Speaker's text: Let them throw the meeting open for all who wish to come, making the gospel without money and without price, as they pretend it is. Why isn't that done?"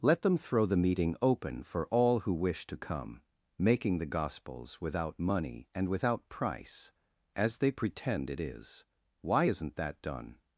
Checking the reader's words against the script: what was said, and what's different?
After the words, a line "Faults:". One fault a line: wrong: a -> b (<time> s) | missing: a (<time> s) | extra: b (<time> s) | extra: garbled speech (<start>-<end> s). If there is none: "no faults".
Let them throw the meeting open for all who wish to come, making the gospels without money and without price, as they pretend it is. Why isn't that done?"
Faults:
wrong: gospel -> gospels (4.0 s)